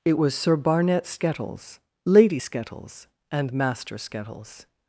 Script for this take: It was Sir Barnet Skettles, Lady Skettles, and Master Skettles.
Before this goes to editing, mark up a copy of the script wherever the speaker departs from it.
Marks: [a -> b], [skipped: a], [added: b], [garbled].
It was Sir Barnet Skettles, Lady Skettles, and Master Skettles.